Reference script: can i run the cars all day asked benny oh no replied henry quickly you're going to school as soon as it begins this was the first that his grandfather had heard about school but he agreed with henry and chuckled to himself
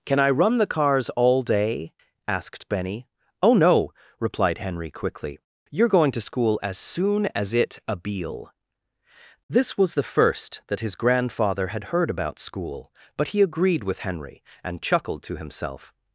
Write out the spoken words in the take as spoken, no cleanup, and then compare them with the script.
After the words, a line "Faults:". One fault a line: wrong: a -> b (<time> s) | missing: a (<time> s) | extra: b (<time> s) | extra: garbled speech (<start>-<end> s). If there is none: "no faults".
can i run the cars all day asked benny oh no replied henry quickly you're going to school as soon as it abeel this was the first that his grandfather had heard about school but he agreed with henry and chuckled to himself
Faults:
wrong: begins -> abeel (7.9 s)